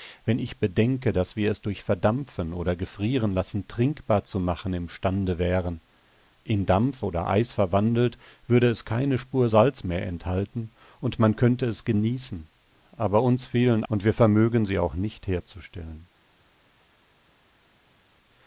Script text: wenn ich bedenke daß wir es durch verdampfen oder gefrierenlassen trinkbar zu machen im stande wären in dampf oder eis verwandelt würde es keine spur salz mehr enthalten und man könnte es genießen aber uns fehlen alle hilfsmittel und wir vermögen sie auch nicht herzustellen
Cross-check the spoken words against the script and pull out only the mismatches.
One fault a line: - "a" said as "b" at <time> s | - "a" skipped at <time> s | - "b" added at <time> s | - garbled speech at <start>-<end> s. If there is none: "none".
- "alle hilfsmittel" skipped at 13.8 s